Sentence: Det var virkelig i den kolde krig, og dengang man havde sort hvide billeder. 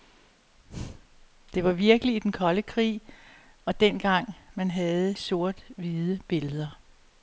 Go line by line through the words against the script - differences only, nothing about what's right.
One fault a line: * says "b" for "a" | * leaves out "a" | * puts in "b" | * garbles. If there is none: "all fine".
all fine